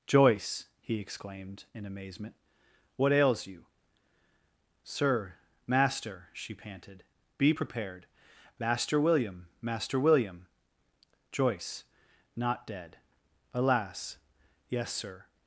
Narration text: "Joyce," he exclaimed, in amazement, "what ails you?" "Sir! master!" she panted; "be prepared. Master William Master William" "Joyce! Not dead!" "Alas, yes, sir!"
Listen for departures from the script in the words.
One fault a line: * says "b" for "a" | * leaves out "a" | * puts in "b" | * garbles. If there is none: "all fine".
all fine